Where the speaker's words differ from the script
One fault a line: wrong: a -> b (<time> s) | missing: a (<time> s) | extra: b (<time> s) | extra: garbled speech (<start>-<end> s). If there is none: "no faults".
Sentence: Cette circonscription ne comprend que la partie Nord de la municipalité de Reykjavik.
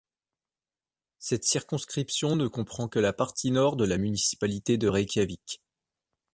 no faults